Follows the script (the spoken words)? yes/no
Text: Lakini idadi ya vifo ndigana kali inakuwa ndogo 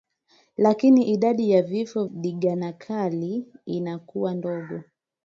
yes